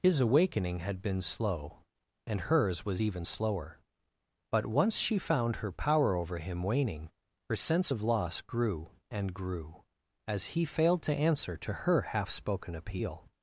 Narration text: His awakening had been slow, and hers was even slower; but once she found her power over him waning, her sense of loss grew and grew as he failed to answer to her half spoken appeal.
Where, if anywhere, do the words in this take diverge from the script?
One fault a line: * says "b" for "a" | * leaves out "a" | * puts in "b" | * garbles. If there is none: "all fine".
all fine